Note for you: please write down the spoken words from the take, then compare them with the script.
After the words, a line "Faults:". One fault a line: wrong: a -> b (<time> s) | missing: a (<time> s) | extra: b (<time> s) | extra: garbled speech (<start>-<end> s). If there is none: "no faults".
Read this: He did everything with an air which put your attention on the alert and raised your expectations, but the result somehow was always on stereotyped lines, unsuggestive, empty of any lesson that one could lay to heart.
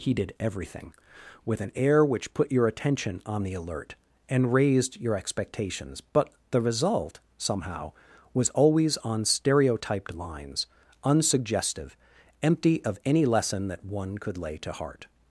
He did everything with an air which put your attention on the alert and raised your expectations, but the result somehow was always on stereotyped lines, unsuggestive, empty of any lesson that one could lay to heart.
Faults:
no faults